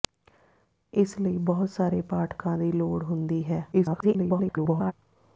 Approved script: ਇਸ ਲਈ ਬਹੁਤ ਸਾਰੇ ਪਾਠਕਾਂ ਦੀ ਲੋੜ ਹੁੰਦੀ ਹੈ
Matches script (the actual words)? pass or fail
fail